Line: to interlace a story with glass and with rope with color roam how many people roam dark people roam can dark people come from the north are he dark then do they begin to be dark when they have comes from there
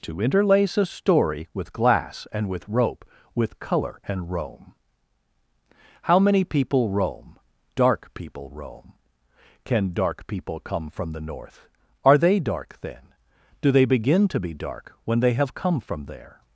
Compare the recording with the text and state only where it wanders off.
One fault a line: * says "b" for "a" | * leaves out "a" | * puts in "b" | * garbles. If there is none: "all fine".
* puts in "and"
* says "they" for "he"
* says "come" for "comes"